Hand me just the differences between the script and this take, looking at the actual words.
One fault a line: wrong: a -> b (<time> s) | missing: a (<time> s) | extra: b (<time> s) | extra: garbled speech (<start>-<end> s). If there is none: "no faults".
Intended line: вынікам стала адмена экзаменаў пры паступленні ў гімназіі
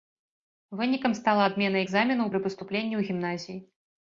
no faults